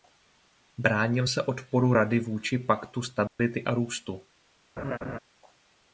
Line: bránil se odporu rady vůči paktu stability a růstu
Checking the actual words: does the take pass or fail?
pass